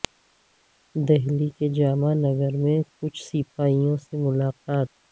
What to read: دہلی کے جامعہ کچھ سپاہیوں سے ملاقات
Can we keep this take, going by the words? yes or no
no